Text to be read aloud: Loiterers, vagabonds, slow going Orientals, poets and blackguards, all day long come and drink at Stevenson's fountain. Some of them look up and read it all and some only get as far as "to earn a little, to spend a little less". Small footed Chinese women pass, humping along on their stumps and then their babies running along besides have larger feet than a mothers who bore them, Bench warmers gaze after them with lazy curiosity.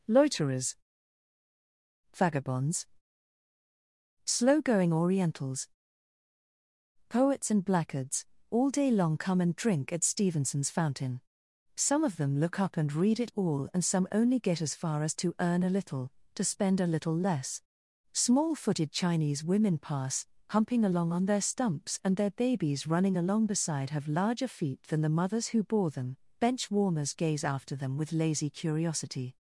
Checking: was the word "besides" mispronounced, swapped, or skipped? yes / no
yes